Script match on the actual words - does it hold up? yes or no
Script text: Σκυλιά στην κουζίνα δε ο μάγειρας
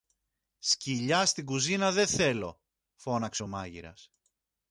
no